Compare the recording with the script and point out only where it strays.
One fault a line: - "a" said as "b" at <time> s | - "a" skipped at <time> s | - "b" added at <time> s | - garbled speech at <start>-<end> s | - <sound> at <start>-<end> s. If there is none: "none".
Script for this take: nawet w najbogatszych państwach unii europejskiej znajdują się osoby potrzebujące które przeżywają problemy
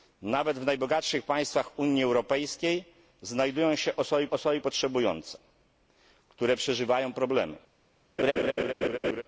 - "osoby" added at 4.3 s
- laugh at 8.2-9.2 s